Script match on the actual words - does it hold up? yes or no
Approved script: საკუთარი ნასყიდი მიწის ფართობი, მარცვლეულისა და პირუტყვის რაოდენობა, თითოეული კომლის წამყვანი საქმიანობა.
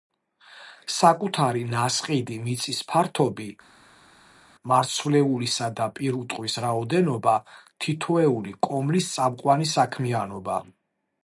yes